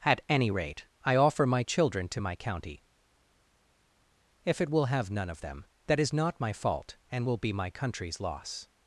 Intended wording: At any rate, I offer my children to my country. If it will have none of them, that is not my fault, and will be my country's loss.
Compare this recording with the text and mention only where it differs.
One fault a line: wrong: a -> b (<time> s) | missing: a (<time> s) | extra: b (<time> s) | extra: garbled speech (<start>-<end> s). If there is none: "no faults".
wrong: country -> county (2.3 s)